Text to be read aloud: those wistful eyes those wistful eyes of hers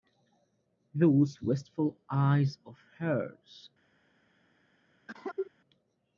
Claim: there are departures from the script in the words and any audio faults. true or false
true